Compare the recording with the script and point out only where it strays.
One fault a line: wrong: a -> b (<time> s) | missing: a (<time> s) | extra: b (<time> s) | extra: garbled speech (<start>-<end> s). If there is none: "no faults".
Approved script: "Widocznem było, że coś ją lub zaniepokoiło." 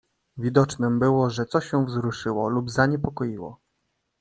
extra: wzruszyło (1.8 s)